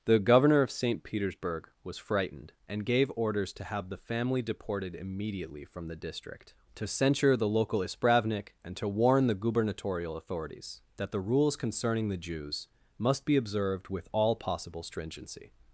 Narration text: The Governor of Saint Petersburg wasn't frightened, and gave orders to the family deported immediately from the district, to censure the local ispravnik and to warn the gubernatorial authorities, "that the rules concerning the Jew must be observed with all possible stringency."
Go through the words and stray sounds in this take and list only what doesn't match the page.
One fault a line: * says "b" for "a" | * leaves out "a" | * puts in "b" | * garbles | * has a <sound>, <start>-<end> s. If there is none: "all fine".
* says "was" for "wasn't"
* puts in "have"
* says "Jews" for "Jew"